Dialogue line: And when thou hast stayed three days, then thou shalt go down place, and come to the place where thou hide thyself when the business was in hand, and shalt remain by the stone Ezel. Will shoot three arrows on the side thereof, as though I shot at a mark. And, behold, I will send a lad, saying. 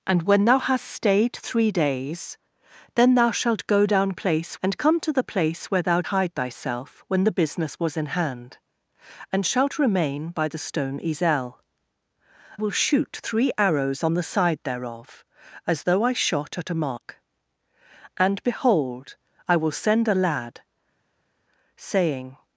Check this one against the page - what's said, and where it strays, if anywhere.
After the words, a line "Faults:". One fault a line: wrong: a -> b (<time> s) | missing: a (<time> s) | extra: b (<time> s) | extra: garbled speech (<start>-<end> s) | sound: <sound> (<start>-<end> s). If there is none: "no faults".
And when thou hast stayed three days, then thou shalt go down place, and come to the place where thou hide thyself when the business was in hand, and shalt remain by the stone Ezel. Will shoot three arrows on the side thereof, as though I shot at a mark. And, behold, I will send a lad, saying.
Faults:
no faults